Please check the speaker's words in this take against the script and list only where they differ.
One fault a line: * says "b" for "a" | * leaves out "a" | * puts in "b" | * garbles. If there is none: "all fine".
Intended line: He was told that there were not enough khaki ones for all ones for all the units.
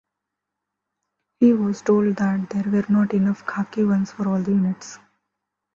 * leaves out "ones for all"